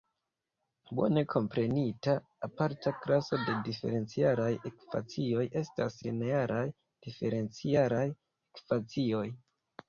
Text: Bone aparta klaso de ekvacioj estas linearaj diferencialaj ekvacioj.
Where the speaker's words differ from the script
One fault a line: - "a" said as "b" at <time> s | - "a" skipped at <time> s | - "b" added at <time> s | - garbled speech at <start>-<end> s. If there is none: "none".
- "komprenita" added at 1.3 s
- "diferencialaj" added at 3.7 s